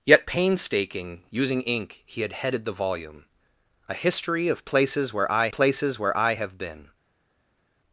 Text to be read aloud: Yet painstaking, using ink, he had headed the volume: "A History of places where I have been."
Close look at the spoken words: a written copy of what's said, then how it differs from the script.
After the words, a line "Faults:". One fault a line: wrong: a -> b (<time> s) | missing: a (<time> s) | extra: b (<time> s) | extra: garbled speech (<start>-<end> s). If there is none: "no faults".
Yet painstaking, using ink, he had headed the volume: "A History of places where I places where I have been."
Faults:
extra: places where I (5.5 s)